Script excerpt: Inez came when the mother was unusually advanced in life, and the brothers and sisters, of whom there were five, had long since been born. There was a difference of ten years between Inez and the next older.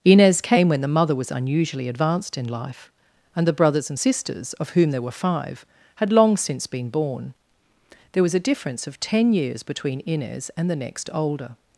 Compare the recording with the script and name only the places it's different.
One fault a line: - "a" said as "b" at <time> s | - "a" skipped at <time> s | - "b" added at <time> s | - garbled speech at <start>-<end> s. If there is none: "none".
none